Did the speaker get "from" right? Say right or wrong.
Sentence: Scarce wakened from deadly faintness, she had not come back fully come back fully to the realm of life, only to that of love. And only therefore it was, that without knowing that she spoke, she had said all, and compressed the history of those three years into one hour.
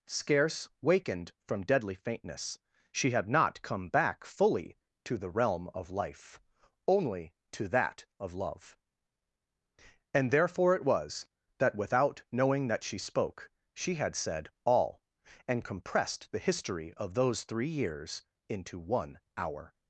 right